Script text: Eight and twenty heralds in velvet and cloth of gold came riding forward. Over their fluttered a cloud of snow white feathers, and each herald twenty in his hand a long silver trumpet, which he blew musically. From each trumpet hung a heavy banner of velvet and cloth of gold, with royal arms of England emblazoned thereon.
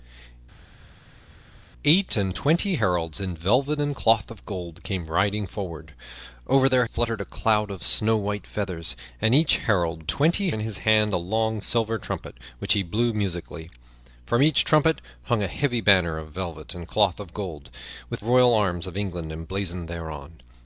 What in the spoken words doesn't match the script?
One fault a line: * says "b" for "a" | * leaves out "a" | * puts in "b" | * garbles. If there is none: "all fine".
all fine